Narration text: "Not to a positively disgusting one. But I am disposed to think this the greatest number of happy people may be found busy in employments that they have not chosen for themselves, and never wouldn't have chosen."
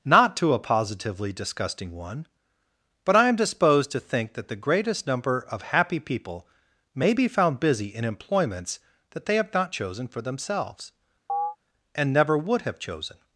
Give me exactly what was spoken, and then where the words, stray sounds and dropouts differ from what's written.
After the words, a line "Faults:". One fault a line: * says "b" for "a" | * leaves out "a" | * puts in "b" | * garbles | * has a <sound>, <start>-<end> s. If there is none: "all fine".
"Not to a positively disgusting one. But I am disposed to think that the greatest number of happy people may be found busy in employments that they have not chosen for themselves, and never would have chosen."
Faults:
* says "that" for "this"
* has a chirp, 11.3-11.6 s
* says "would" for "wouldn't"